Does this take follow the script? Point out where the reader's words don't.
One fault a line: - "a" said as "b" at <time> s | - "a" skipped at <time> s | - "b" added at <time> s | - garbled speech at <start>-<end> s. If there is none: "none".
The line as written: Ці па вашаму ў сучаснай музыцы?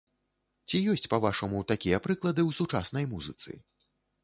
- "ёсць" added at 0.9 s
- "такія прыклады" added at 1.7 s